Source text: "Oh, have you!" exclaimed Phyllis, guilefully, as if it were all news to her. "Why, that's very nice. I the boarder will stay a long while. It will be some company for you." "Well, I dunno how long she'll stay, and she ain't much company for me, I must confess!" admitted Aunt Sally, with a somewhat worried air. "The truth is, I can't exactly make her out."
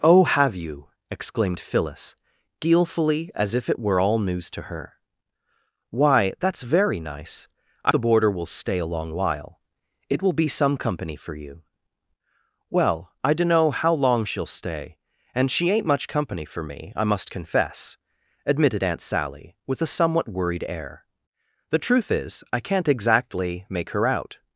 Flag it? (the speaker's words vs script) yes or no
no